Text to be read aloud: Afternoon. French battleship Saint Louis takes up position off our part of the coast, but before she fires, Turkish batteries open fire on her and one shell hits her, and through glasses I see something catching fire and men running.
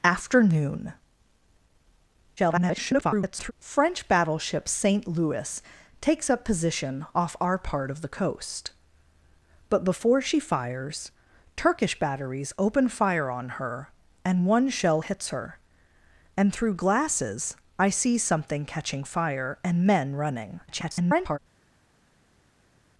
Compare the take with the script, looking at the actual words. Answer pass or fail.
fail